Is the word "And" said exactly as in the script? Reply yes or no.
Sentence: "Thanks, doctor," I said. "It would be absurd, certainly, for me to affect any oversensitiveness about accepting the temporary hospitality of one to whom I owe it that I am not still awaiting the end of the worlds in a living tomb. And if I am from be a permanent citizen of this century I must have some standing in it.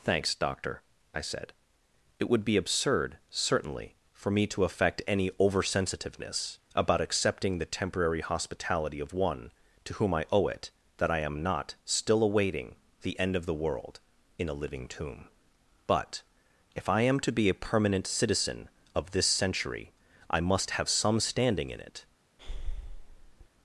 no